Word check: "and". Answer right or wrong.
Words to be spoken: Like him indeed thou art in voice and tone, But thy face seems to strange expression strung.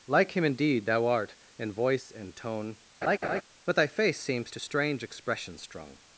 right